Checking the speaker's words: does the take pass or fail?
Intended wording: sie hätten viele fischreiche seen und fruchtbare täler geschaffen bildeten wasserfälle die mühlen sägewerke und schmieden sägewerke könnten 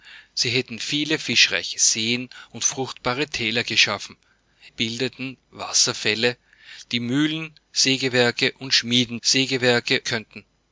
pass